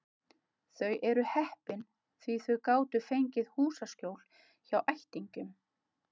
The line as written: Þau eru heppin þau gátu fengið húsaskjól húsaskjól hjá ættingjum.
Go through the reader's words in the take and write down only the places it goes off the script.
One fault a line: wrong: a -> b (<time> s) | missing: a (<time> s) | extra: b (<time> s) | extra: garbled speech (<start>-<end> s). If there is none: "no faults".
extra: því (2.2 s)
missing: húsaskjól (4.2 s)